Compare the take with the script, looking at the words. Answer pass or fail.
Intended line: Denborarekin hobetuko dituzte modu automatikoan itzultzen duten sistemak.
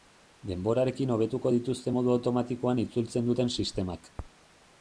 pass